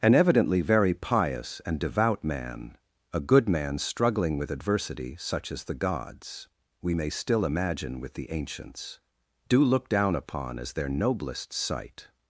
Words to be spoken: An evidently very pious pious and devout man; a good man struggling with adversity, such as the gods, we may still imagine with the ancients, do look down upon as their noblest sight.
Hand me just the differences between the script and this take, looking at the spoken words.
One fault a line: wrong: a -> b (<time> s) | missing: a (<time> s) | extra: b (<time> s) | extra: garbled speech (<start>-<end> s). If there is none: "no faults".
missing: pious (1.6 s)